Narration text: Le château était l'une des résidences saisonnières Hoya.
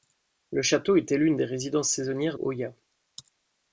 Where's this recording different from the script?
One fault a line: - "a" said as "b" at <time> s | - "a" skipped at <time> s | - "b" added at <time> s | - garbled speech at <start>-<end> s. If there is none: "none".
none